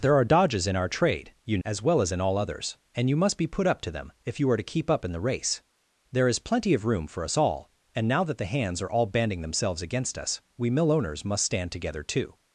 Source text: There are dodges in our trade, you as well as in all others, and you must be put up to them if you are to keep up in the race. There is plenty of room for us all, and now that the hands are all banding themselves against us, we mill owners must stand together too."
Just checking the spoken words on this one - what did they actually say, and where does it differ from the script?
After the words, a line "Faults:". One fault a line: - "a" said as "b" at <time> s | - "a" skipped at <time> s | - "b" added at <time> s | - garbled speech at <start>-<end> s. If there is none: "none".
There are dodges in our trade, you as well as in all others, and you must be put up to them if you are to keep up in the race. There is plenty of room for us all, and now that the hands are all banding themselves against us, we mill owners must stand together too."
Faults:
none